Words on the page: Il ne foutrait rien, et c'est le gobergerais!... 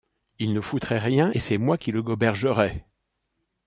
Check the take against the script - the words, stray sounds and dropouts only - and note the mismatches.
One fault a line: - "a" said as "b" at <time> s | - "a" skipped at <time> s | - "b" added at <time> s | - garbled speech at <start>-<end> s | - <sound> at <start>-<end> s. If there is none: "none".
- "moi qui" added at 1.6 s